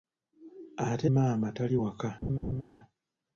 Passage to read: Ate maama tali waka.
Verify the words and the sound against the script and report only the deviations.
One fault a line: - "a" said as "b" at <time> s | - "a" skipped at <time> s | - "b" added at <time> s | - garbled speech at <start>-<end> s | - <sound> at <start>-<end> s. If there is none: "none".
- laugh at 2.2-2.6 s